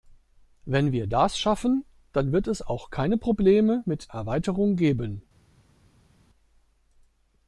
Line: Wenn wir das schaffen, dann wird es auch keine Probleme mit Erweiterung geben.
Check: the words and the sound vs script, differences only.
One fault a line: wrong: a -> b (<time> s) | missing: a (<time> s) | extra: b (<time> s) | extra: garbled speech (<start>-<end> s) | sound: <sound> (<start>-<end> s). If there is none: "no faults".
no faults